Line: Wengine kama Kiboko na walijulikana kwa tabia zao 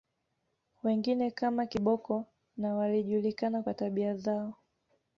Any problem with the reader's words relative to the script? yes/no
no